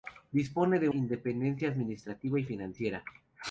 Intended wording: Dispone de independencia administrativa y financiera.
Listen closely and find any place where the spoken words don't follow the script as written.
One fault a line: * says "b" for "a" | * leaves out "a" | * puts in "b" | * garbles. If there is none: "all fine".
all fine